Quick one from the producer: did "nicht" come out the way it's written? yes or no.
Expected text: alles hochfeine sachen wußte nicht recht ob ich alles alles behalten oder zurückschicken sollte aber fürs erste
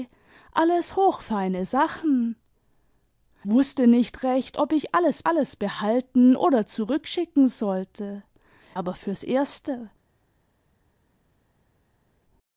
yes